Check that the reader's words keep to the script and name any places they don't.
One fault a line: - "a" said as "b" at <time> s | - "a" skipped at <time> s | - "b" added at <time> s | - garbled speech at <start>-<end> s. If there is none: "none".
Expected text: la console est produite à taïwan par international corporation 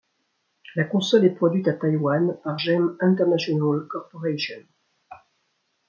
- "gem" added at 2.5 s